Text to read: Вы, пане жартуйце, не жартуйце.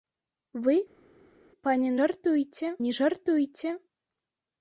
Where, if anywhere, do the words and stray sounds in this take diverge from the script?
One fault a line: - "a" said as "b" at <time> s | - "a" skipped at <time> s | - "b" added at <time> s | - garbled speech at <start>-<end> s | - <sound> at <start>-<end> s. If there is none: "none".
none